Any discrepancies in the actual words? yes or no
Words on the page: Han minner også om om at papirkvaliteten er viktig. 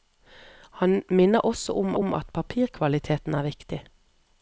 no